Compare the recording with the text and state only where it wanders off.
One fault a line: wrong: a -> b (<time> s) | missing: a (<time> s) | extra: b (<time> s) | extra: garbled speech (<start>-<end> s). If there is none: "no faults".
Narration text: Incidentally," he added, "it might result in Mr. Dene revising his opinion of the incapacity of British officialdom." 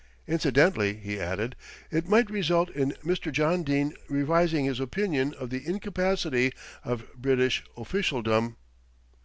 extra: John (3.3 s)